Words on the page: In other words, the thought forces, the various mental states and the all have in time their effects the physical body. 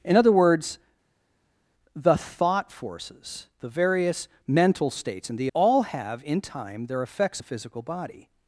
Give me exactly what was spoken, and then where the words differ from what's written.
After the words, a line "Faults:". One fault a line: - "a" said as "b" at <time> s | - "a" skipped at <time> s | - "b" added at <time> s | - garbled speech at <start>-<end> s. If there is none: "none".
In other words, the thought forces, the various mental states and the all have in time their effects the physical body.
Faults:
none